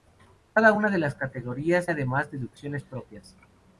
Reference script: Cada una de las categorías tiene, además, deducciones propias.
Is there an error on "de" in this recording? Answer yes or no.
no